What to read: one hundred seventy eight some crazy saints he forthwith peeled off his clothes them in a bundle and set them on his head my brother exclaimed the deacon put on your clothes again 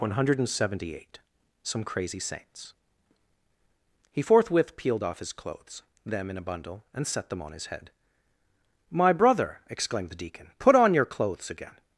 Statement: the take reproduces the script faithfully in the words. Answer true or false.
true